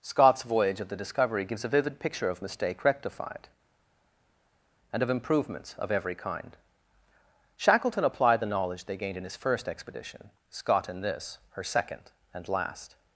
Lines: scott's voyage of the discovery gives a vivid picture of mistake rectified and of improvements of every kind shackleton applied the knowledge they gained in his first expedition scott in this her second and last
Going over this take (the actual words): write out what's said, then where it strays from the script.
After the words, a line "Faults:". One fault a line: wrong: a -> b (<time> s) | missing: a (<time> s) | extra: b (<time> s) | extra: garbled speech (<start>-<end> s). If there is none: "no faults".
scott's voyage of the discovery gives a vivid picture of mistake rectified and of improvements of every kind shackleton applied the knowledge they gained in his first expedition scott in this her second and last
Faults:
no faults